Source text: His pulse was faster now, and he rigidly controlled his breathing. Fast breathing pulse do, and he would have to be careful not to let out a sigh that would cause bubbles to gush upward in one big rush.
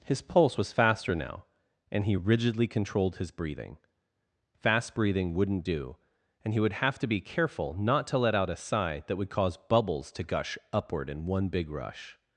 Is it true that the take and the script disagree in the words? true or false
true